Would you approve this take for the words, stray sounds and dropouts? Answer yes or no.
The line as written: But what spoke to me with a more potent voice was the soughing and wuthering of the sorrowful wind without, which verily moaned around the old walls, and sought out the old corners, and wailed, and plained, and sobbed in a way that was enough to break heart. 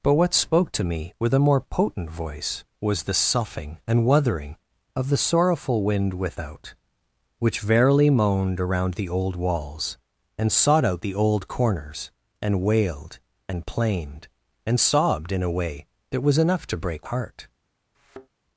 no